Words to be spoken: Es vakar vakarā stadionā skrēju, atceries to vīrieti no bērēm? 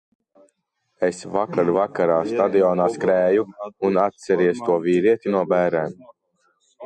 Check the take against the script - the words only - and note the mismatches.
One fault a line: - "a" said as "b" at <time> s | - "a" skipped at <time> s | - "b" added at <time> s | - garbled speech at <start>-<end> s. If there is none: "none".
- "un" added at 3.9 s